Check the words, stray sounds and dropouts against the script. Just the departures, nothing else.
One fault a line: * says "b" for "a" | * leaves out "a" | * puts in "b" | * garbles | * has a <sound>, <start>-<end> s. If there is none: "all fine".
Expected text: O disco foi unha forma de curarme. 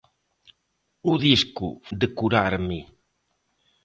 * leaves out "foi unha forma"